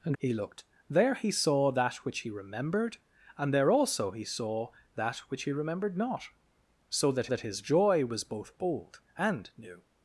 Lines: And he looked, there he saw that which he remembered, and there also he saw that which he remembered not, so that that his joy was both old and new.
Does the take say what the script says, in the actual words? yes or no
yes